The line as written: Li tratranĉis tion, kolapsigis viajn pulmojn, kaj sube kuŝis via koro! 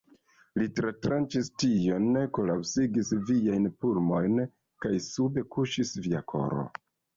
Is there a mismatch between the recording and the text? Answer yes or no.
no